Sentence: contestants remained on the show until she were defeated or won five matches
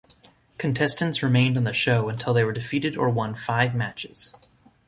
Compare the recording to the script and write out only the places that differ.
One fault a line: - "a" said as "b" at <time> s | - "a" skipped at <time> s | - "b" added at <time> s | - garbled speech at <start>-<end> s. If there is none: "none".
- "she" said as "they" at 2.3 s